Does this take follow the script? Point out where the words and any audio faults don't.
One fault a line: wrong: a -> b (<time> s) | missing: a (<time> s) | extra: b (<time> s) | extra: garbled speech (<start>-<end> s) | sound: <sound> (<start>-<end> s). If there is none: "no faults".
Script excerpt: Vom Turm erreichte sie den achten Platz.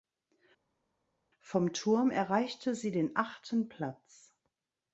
no faults